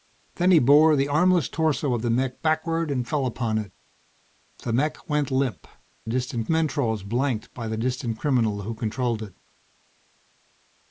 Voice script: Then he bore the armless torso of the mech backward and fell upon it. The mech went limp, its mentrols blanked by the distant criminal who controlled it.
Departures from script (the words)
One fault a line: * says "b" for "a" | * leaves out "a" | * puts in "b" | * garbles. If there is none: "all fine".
* says "distant" for "its"